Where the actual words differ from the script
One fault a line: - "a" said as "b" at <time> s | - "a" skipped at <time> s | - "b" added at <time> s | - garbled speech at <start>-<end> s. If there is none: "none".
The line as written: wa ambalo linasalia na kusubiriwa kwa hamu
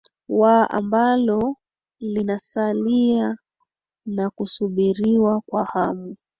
none